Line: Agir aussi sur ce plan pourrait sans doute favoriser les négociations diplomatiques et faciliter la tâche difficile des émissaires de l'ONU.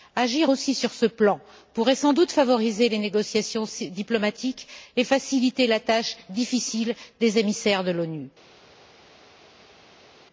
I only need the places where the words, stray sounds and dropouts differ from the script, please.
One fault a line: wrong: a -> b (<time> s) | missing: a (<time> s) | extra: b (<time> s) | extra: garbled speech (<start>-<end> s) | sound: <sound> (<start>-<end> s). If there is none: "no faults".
no faults